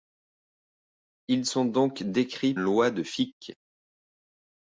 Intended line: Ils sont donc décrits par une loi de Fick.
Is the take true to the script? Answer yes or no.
no